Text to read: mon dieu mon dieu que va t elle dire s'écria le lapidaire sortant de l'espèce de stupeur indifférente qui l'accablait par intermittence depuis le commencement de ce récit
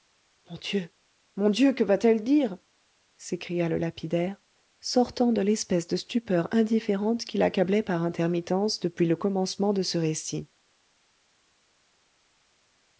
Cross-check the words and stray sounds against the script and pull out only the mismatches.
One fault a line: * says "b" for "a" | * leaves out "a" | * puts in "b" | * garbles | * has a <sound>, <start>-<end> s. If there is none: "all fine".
all fine